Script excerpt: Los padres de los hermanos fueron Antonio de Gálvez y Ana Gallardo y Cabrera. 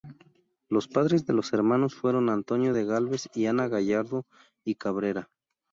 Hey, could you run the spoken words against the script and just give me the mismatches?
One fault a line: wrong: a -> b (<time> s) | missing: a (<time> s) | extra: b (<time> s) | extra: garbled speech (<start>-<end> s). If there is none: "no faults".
no faults